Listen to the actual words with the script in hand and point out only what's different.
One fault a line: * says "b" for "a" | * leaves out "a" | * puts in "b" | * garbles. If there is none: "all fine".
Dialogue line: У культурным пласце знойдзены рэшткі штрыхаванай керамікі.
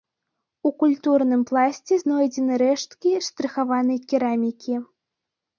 all fine